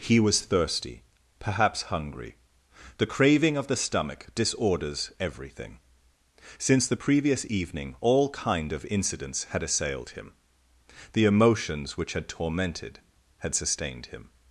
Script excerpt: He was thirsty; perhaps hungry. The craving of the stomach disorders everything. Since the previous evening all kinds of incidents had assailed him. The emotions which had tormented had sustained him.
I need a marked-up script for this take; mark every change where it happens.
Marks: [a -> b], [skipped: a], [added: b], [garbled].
He was thirsty; perhaps hungry. The craving of the stomach disorders everything. Since the previous evening all [kinds -> kind] of incidents had assailed him. The emotions which had tormented had sustained him.